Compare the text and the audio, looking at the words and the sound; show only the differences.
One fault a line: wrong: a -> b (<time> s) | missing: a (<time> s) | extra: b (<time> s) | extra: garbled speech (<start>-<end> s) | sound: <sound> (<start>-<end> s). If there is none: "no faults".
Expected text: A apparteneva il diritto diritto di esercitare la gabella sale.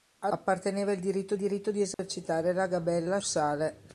sound: dropout (1.9-2.0 s)